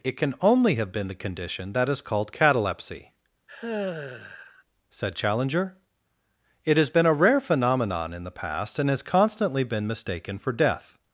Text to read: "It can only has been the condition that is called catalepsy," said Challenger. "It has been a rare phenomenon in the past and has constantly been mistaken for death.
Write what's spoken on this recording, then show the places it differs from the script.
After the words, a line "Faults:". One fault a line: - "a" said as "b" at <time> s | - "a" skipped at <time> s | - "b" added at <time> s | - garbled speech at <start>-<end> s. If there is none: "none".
"It can only have been the condition that is called catalepsy," said Challenger. "It has been a rare phenomenon in the past and has constantly been mistaken for death.
Faults:
- "has" said as "have" at 0.8 s